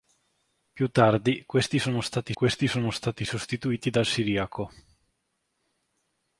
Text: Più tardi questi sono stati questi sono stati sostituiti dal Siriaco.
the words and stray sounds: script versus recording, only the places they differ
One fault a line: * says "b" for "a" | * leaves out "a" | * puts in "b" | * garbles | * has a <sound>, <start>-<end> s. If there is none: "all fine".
all fine